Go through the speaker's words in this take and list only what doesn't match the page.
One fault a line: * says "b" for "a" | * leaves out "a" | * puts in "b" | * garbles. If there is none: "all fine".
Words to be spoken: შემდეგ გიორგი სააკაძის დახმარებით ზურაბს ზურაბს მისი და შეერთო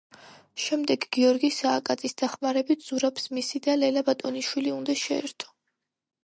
* leaves out "ზურაბს"
* puts in "ლელა ბატონიშვილი უნდა"